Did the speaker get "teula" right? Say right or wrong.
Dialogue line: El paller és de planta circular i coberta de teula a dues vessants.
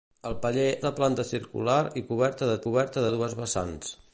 wrong